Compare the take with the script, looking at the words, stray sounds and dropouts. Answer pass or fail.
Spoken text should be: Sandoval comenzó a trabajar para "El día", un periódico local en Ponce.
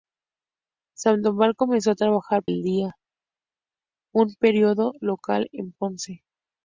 fail